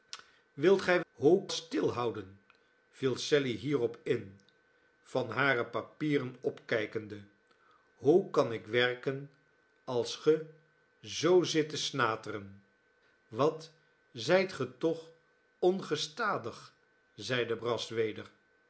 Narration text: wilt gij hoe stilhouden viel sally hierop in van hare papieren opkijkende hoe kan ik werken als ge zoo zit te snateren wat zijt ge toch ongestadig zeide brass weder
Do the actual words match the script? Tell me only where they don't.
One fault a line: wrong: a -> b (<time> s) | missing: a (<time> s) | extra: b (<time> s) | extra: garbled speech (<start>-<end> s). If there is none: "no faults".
no faults